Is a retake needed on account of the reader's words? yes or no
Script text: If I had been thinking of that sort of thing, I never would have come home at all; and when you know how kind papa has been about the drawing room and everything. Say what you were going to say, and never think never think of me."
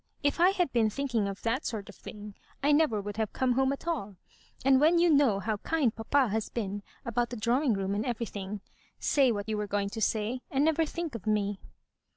yes